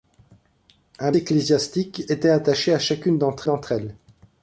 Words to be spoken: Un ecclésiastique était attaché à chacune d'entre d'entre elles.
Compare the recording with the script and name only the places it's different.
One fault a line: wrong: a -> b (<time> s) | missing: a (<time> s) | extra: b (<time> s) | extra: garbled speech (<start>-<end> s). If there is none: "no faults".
no faults